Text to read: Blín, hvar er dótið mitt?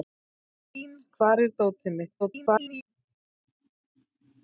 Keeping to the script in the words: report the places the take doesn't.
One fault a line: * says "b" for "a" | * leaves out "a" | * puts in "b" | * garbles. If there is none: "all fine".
* garbles